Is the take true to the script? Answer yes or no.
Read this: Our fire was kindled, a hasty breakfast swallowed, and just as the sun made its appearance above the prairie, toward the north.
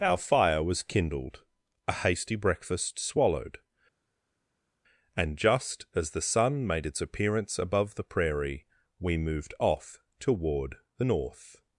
no